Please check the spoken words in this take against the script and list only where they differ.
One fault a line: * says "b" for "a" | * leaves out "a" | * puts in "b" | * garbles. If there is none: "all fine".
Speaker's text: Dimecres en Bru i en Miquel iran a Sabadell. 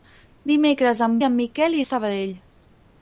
* leaves out "Bru"
* leaves out "iran"